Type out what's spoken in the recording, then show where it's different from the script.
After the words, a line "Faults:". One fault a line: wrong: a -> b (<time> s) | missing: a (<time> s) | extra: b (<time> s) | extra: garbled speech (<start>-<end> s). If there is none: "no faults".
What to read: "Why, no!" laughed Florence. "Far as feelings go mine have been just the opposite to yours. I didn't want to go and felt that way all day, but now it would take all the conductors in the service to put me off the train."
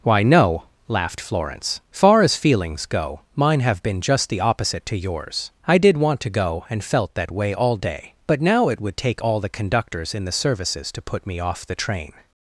"Why, no!" laughed Florence. "Far as feelings go mine have been just the opposite to yours. I did want to go and felt that way all day, but now it would take all the conductors in the services to put me off the train."
Faults:
wrong: didn't -> did (5.8 s)
wrong: service -> services (10.3 s)